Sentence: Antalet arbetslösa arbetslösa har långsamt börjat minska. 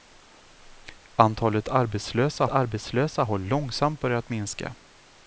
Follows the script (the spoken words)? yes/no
yes